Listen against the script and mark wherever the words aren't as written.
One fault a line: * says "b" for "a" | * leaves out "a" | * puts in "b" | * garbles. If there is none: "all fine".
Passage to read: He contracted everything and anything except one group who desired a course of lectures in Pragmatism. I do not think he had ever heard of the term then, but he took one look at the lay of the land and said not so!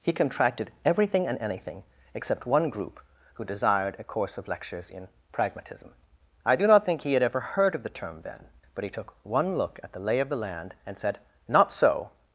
all fine